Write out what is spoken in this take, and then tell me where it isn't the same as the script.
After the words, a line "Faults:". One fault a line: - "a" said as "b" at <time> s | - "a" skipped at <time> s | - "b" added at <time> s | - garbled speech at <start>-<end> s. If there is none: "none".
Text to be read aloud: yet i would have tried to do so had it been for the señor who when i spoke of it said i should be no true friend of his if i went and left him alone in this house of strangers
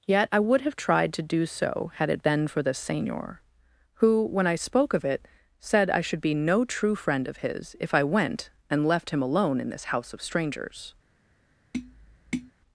yet i would have tried to do so had it been for the señor who when i spoke of it said i should be no true friend of his if i went and left him alone in this house of strangers
Faults:
none